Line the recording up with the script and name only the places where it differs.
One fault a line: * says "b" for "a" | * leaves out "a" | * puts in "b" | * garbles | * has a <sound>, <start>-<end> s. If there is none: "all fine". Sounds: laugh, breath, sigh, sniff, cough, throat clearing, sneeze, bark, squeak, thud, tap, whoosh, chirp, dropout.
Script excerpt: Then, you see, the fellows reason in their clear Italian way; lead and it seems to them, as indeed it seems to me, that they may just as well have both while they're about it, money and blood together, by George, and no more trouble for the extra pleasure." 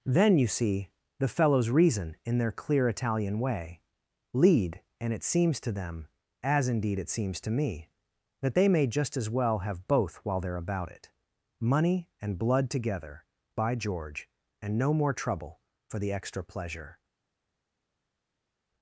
all fine